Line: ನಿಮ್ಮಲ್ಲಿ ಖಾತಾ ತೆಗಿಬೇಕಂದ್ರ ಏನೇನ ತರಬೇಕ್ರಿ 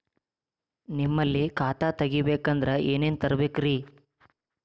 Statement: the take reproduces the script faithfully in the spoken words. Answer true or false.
true